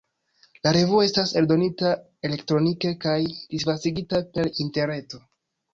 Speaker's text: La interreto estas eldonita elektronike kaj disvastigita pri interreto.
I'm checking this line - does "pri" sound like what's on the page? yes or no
no